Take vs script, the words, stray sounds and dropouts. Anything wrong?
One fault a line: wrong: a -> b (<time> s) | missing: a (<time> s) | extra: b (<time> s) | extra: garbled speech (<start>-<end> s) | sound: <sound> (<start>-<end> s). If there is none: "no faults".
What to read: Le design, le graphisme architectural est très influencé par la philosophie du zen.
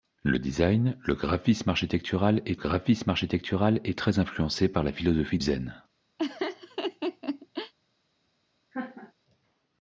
extra: graphisme architectural est (2.5 s)
missing: du (5.4 s)
sound: laugh (6.2-7.7 s)
sound: laugh (8.7-9.1 s)